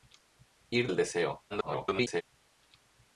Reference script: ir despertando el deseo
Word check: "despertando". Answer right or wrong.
wrong